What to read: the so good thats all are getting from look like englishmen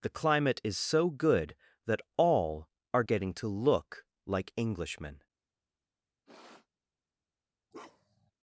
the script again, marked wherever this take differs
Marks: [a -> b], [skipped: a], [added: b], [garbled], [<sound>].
the [added: climate is] so good [thats -> that] all are getting [from -> to] look like englishmen [sniff] [bark]